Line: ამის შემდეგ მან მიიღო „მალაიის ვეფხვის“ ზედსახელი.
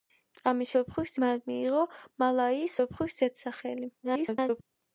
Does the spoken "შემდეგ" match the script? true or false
false